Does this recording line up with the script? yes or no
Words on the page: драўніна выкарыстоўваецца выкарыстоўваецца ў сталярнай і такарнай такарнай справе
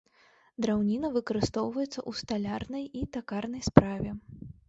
no